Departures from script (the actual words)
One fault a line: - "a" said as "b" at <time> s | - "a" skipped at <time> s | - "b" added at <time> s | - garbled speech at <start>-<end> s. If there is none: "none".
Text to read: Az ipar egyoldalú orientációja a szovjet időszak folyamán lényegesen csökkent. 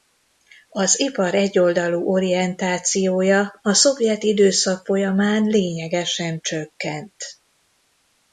none